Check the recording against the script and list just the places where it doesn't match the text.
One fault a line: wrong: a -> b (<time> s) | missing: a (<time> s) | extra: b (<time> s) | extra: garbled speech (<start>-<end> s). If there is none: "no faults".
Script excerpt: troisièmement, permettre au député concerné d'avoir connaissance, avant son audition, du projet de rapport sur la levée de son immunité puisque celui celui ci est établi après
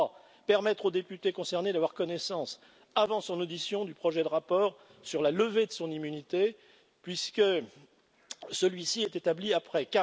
missing: celui (8.8 s)